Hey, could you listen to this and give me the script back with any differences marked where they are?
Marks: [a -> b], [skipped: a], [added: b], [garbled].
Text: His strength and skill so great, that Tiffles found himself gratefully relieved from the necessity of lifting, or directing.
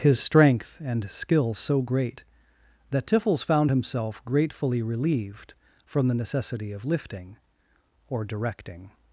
His strength and skill so great, that Tiffles found himself gratefully relieved from the necessity of lifting, or directing.